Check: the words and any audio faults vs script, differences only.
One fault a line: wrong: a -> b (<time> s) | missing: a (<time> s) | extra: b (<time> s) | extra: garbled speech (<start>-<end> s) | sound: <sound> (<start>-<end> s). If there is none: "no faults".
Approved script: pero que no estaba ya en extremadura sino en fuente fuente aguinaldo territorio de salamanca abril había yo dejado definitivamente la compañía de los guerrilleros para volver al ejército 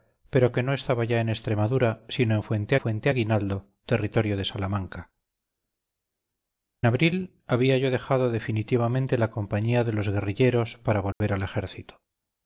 sound: dropout (11.1-11.2 s)